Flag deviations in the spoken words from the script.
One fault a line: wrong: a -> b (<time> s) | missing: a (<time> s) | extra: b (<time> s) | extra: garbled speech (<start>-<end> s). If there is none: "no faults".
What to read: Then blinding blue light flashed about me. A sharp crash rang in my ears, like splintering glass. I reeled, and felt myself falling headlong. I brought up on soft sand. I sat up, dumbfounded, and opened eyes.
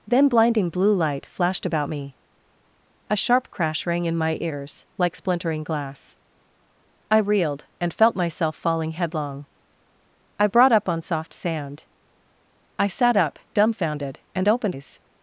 no faults